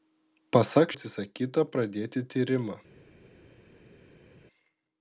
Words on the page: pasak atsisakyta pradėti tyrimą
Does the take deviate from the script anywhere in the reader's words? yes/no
no